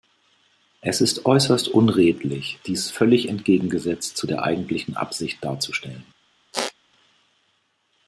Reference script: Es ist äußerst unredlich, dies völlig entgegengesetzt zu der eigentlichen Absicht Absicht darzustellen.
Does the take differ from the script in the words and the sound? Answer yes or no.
yes